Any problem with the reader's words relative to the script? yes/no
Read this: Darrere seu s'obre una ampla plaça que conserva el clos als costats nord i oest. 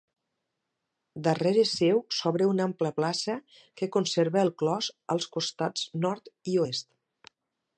no